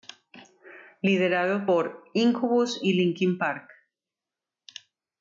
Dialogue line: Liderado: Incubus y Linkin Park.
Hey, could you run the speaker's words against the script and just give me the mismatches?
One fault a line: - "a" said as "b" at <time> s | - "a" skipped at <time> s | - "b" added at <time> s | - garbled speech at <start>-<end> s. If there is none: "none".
- "por" added at 1.6 s